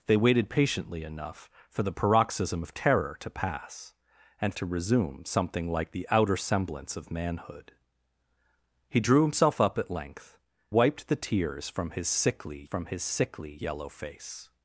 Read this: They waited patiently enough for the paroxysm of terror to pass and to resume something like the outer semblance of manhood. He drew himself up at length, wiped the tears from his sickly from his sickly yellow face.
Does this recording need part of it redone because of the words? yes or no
no